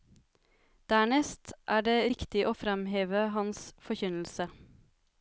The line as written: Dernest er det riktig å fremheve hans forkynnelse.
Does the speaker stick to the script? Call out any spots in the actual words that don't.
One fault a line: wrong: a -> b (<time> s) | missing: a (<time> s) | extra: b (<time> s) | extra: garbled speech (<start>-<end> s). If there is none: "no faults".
no faults